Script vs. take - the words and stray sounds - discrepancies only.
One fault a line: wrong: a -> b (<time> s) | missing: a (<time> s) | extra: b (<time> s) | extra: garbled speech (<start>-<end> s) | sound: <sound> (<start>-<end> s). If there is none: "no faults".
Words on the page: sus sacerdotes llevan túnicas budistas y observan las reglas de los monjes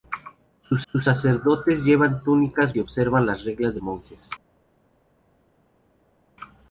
extra: sus (0.9 s)
missing: budistas (2.8 s)
missing: los (3.8 s)